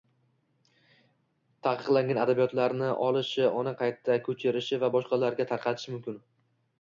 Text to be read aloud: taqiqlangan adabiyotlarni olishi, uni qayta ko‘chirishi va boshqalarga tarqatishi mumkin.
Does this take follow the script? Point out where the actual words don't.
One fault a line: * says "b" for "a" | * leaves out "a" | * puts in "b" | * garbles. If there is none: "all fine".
all fine